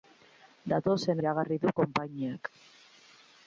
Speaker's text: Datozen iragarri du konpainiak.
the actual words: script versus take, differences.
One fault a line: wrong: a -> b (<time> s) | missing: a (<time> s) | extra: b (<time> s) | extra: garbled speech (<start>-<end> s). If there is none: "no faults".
no faults